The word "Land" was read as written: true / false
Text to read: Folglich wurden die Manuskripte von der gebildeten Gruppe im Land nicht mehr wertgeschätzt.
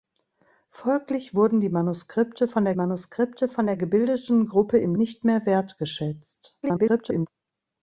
false